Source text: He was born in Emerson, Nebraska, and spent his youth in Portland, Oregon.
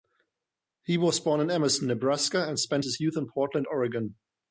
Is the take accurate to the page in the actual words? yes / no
yes